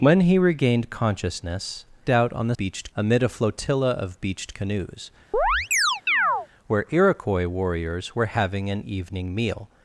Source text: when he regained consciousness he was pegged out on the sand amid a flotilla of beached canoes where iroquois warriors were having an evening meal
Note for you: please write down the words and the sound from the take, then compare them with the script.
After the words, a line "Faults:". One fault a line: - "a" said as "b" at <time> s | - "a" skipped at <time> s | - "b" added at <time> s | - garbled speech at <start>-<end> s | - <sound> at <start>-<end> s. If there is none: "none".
when he regained consciousness out on the beached amid a flotilla of beached canoes where iroquois warriors were having an evening meal
Faults:
- "he was pegged" skipped at 1.9 s
- "sand" said as "beached" at 2.6 s
- chirp at 5.3-6.5 s